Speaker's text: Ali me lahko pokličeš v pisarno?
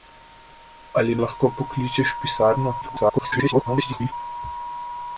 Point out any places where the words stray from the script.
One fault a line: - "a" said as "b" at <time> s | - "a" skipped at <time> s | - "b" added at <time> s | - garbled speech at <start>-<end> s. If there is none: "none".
- "me" skipped at 1.2 s
- garbled speech at 2.8-4.1 s